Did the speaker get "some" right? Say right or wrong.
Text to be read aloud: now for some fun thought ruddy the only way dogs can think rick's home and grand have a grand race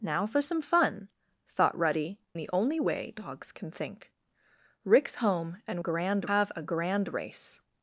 right